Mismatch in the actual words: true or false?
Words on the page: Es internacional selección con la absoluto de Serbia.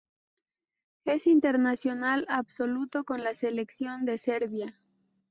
true